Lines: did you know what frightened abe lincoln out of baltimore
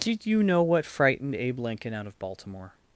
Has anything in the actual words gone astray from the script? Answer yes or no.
no